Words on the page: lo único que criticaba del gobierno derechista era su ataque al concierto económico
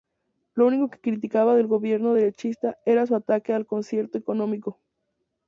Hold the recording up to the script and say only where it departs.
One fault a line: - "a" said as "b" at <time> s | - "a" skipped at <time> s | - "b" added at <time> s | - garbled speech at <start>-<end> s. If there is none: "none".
none